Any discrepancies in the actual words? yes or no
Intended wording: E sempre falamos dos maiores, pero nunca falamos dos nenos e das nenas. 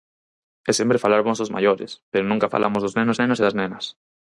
yes